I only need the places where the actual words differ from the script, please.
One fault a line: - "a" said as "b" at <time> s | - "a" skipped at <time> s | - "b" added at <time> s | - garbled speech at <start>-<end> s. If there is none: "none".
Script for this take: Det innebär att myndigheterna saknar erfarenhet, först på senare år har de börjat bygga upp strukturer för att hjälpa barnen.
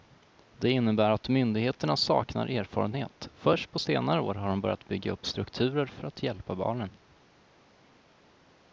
none